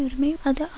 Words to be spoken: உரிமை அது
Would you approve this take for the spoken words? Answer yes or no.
yes